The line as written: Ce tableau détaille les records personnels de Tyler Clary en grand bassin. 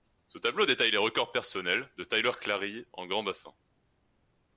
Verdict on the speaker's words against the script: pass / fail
pass